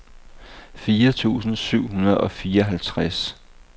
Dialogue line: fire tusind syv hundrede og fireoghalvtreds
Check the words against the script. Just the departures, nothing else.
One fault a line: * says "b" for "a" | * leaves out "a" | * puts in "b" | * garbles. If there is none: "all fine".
all fine